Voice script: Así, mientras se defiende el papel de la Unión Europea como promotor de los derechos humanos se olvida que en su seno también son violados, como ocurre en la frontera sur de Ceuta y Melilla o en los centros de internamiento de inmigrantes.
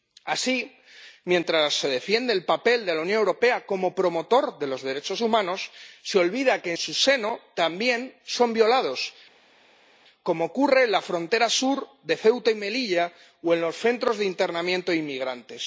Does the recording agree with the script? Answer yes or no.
no